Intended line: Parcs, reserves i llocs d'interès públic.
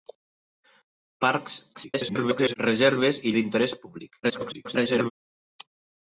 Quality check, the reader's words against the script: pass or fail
fail